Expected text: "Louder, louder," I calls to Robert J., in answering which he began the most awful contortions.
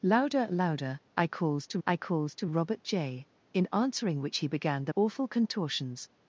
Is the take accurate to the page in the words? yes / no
no